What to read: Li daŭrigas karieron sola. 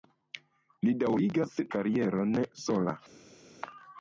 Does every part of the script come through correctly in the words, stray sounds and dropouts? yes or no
yes